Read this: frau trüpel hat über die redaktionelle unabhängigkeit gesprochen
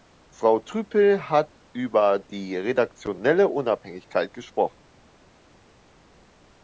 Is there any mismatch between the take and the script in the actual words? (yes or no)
no